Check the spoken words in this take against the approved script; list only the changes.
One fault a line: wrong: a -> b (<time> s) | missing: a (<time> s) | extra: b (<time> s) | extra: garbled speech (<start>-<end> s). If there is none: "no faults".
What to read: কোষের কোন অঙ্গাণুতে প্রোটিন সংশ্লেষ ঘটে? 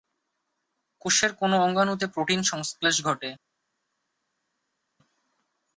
no faults